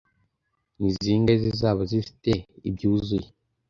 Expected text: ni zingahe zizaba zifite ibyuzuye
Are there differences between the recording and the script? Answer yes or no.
no